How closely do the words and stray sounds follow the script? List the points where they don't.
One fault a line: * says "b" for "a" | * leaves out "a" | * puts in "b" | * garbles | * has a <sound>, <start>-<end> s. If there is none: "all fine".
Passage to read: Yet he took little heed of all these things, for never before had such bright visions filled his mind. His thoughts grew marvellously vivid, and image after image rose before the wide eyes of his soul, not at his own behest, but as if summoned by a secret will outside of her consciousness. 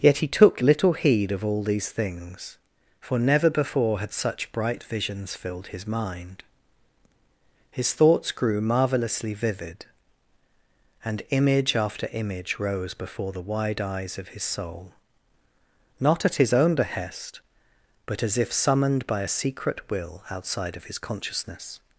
* says "his" for "her"